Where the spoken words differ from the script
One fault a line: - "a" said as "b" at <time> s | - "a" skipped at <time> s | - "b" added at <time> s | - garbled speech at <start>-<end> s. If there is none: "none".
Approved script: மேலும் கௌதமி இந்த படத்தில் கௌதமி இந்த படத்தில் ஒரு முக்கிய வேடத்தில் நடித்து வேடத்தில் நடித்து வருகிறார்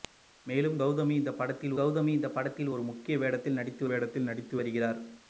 none